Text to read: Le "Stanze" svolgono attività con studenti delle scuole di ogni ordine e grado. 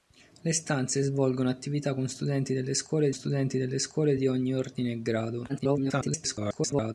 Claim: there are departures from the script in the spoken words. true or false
true